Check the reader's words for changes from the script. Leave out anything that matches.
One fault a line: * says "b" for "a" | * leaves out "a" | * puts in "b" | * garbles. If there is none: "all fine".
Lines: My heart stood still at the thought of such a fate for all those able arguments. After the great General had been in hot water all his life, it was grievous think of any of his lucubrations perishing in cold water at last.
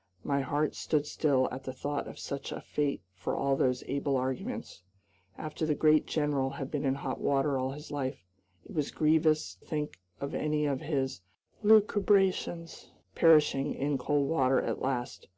all fine